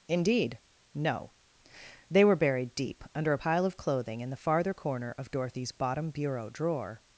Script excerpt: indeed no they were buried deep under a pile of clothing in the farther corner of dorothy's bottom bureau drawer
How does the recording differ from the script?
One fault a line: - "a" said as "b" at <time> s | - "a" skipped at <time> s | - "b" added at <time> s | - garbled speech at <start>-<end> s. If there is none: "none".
none